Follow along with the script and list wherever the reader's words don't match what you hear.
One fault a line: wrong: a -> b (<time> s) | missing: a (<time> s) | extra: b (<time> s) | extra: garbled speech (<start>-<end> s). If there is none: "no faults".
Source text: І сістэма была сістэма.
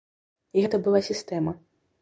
wrong: сістэма -> гэта (0.6 s)